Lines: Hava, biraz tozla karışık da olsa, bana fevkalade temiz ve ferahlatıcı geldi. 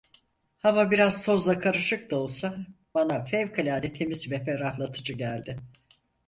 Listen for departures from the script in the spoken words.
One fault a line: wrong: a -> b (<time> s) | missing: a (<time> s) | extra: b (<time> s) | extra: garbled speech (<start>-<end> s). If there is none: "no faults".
no faults